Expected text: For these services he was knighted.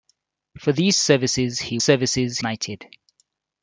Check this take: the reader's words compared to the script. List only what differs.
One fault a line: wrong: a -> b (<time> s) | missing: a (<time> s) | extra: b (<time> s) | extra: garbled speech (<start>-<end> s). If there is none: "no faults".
wrong: was -> services (1.8 s)